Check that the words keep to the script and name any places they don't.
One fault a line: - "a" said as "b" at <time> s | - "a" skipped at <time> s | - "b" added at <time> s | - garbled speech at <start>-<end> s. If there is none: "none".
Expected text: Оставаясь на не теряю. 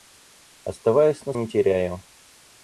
none